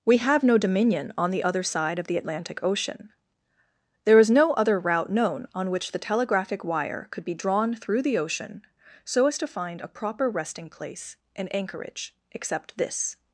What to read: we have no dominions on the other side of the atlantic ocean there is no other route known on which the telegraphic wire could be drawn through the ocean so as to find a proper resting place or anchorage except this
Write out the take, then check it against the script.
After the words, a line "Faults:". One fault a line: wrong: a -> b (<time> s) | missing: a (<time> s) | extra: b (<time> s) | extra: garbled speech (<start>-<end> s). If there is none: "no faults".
we have no dominion on the other side of the atlantic ocean there is no other route known on which the telegraphic wire could be drawn through the ocean so as to find a proper resting place and anchorage except this
Faults:
wrong: dominions -> dominion (0.6 s)
wrong: or -> and (11.4 s)